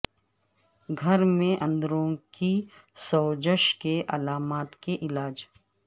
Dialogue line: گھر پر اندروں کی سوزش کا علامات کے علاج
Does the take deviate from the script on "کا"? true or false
true